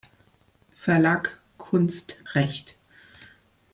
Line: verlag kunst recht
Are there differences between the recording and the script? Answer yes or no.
no